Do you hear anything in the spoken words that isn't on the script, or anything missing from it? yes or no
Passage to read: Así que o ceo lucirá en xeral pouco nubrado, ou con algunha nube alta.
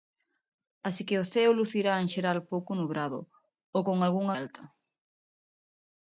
yes